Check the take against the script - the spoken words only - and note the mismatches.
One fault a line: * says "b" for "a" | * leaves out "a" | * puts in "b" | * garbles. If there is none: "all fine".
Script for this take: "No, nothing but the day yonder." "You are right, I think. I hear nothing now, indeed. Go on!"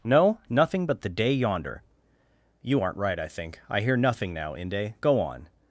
* says "aren't" for "are"
* says "inde" for "indeed"